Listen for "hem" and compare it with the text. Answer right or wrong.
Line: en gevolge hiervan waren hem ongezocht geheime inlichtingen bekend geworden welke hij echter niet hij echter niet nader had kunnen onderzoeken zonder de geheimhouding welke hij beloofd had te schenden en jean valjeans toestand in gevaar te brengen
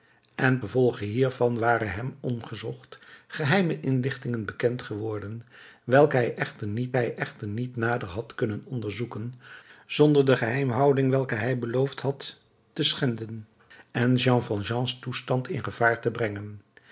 right